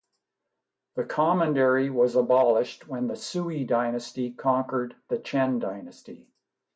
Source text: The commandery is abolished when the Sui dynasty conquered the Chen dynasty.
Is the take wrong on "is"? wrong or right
wrong